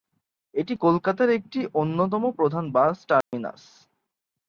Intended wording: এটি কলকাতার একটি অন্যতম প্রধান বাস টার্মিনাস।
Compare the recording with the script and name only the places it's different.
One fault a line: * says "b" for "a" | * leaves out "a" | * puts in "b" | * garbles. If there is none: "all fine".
all fine